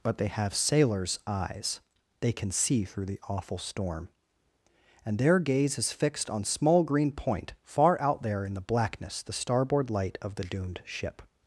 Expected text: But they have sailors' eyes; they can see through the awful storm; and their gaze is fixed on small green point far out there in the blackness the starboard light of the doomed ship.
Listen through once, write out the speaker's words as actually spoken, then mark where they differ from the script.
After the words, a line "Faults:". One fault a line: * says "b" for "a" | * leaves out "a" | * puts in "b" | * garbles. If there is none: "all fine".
But they have sailors' eyes; they can see through the awful storm; and their gaze is fixed on small green point far out there in the blackness the starboard light of the doomed ship.
Faults:
all fine